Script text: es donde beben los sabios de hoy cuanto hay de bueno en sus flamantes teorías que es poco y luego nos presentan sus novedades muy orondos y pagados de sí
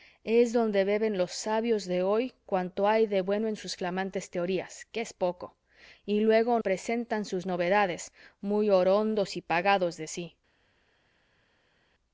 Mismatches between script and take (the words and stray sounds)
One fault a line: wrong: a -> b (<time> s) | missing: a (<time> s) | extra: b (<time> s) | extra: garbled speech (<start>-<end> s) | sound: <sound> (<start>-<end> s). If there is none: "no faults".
missing: nos (6.6 s)